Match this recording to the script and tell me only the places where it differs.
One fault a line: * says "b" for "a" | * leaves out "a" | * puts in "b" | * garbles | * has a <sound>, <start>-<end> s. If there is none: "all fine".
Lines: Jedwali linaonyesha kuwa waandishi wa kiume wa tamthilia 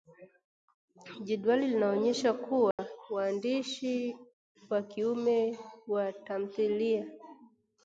* has a dropout, 2.7-2.8 s